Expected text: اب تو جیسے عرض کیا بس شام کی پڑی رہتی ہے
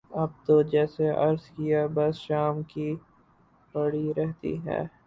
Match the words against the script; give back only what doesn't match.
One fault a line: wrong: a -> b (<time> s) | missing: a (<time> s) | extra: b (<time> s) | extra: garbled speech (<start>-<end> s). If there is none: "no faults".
no faults